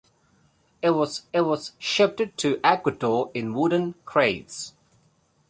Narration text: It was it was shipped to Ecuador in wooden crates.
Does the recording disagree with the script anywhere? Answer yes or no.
no